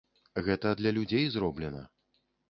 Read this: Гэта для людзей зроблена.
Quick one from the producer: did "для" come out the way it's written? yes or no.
yes